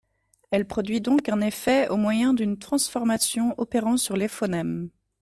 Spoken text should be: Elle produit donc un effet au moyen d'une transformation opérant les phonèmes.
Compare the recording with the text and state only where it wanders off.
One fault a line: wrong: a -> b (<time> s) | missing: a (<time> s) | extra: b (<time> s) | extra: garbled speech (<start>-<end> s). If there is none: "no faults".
extra: sur (4.0 s)